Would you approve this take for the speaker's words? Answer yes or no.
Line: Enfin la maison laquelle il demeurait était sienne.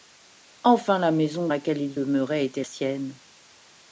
yes